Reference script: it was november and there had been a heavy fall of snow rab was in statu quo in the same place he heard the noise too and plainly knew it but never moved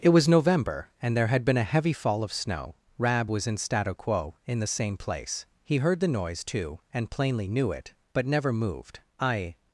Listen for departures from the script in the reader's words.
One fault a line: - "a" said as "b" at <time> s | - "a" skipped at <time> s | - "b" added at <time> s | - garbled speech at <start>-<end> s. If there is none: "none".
- "i" added at 9.2 s